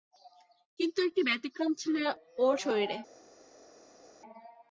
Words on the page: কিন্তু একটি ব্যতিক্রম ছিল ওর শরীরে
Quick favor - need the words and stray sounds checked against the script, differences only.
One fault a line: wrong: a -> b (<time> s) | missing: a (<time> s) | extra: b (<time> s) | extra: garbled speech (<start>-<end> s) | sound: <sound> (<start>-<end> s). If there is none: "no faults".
no faults